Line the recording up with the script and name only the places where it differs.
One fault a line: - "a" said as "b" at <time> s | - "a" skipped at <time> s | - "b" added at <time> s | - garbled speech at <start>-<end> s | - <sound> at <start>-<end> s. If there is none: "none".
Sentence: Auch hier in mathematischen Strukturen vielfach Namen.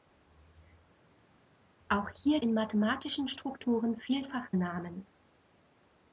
none